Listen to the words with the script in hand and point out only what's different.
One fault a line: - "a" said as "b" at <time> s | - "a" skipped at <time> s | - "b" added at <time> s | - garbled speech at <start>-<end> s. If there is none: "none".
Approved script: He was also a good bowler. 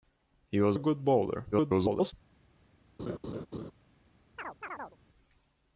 - "also" skipped at 0.8 s
- garbled speech at 1.5-2.1 s